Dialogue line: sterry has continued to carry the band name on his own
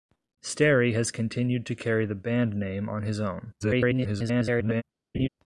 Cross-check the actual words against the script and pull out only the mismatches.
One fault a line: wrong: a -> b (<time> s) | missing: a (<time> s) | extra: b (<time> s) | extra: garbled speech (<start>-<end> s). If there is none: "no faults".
extra: garbled speech (3.6-4.8 s)